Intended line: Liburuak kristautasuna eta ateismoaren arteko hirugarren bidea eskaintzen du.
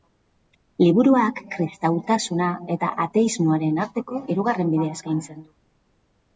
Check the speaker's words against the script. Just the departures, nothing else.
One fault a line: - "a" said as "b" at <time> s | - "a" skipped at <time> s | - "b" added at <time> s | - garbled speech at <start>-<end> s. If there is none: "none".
none